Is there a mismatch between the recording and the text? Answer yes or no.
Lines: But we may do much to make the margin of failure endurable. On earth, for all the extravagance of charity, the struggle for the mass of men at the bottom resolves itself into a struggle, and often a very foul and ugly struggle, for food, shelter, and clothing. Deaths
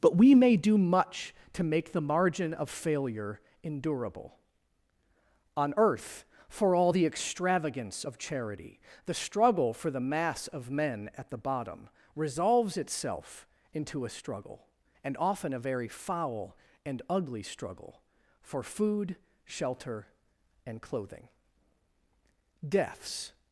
no